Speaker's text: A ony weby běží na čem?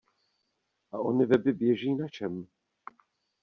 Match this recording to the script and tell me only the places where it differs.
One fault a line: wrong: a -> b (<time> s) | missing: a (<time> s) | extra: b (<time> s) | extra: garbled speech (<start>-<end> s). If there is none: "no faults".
no faults